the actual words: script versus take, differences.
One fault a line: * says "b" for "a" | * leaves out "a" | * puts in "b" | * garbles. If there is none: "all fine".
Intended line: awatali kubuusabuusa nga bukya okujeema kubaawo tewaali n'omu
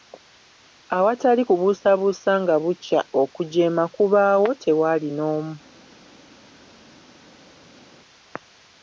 all fine